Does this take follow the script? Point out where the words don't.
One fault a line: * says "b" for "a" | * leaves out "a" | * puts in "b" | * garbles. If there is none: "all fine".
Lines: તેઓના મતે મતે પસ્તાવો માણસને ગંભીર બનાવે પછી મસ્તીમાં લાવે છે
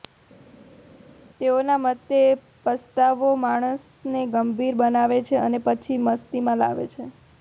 * leaves out "મતે"
* puts in "છે અને"